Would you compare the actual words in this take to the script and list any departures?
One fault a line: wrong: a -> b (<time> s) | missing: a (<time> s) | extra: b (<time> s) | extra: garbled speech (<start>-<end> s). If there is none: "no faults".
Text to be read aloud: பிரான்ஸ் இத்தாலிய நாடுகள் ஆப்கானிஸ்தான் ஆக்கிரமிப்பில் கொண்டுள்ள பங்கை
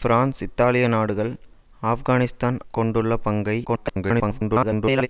missing: ஆக்கிரமிப்பில் (2.6 s)
extra: garbled speech (3.7-5.1 s)